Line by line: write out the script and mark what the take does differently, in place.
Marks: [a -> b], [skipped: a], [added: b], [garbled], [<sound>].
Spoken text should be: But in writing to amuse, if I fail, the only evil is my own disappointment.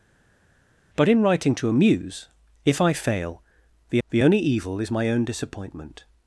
But in writing to amuse, if I fail, the [added: the] only evil is my own disappointment.